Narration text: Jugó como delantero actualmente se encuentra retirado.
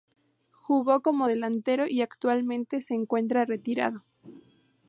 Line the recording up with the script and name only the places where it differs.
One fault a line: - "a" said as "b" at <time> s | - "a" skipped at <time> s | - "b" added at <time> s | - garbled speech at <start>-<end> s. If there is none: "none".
- "y" added at 1.9 s